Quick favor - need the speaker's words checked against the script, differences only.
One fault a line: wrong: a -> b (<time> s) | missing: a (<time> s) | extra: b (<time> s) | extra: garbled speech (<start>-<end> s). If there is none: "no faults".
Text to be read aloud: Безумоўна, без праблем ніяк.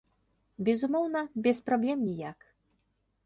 no faults